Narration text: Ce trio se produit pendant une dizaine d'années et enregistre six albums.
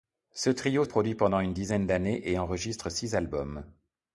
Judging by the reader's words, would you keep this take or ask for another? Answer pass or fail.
fail